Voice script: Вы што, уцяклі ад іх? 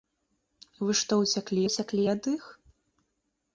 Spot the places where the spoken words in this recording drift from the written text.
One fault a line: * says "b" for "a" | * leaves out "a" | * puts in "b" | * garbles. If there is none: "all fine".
* puts in "уцяклі"